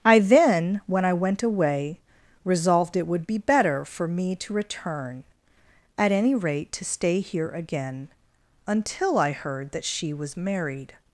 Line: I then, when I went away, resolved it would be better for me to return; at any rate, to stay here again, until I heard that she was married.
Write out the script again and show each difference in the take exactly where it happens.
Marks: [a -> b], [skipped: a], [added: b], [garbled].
I then, when I went away, resolved it would be better for me to return; at any rate, to stay here again, until I heard that she was married.